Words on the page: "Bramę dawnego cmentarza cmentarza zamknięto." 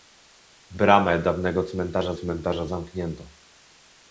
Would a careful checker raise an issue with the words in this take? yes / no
no